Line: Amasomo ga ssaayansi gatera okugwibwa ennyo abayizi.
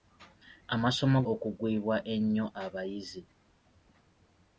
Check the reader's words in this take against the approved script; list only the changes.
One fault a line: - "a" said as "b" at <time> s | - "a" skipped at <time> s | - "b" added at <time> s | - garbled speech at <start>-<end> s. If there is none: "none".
- "ga ssaayansi gatera" skipped at 1.2 s